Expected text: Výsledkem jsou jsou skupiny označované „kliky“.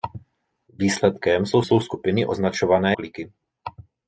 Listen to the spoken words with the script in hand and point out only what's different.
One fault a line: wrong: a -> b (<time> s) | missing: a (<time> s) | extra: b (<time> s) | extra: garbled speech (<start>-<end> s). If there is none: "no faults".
no faults